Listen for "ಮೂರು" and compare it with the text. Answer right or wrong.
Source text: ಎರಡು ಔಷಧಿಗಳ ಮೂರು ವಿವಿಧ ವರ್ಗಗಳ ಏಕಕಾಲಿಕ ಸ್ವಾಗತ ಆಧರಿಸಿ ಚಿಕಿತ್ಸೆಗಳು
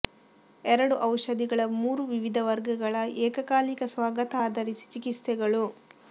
right